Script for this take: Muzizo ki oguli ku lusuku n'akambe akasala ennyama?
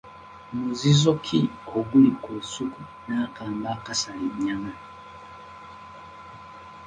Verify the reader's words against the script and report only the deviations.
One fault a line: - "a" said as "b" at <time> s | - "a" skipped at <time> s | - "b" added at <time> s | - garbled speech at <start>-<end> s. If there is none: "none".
none